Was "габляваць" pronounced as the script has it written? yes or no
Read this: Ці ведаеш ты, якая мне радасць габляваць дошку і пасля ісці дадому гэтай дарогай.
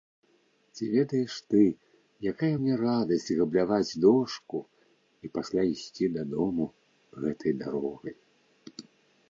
yes